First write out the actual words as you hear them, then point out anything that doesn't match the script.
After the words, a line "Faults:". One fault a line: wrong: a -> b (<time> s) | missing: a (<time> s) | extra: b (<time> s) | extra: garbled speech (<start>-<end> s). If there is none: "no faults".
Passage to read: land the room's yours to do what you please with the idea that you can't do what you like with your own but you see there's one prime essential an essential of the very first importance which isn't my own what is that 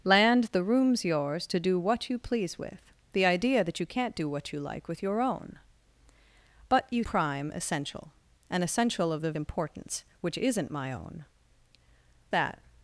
land the room's yours to do what you please with the idea that you can't do what you like with your own but you prime essential an essential of the importance which isn't my own that
Faults:
missing: see there's one (7.0 s)
missing: very first (9.3 s)
missing: what is (11.2 s)